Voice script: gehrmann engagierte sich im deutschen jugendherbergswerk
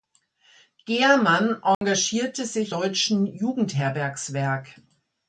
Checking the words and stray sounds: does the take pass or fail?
fail